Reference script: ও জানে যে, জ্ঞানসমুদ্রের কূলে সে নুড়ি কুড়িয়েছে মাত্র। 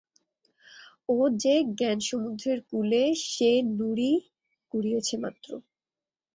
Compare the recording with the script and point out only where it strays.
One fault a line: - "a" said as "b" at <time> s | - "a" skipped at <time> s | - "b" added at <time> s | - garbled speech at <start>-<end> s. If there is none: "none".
- "জানে" skipped at 1.1 s